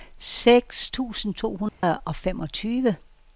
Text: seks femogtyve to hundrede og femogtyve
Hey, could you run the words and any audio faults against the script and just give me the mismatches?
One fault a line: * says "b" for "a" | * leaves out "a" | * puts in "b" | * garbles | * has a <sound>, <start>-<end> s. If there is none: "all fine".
* says "tusind" for "femogtyve"
* has a dropout, 1.7-1.8 s